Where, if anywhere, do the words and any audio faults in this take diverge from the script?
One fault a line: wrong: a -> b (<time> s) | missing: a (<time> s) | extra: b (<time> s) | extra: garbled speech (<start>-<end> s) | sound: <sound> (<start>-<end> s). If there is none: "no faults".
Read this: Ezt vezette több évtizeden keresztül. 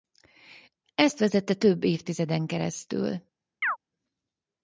sound: chirp (3.6-3.8 s)